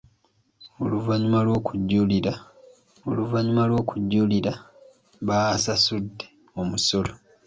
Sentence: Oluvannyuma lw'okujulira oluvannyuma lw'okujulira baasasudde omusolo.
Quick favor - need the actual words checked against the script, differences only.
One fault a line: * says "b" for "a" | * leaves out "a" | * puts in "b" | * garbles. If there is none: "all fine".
all fine